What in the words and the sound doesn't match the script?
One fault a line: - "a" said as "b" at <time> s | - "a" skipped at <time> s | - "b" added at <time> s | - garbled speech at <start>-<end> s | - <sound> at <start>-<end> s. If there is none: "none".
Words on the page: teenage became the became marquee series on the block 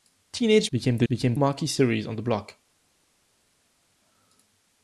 none